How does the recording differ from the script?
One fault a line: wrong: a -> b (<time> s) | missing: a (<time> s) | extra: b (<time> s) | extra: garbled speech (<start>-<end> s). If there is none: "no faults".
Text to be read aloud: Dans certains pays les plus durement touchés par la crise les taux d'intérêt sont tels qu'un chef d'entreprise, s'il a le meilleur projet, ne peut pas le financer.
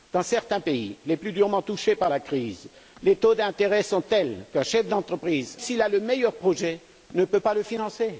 no faults